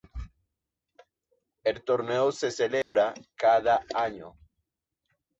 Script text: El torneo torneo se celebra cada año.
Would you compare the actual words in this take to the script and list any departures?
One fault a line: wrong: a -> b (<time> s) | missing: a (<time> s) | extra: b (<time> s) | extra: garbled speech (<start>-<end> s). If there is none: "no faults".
missing: torneo (2.3 s)